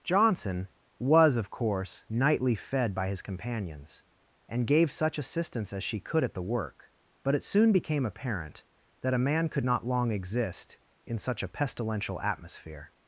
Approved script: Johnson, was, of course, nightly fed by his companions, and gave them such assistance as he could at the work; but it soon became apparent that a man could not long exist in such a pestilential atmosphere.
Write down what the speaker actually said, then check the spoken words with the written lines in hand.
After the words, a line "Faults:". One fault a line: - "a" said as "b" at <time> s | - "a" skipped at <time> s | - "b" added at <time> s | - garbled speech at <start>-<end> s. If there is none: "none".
Johnson, was, of course, nightly fed by his companions, and gave such assistance as she could at the work; but it soon became apparent that a man could not long exist in such a pestilential atmosphere.
Faults:
- "them" skipped at 4.9 s
- "he" said as "she" at 5.8 s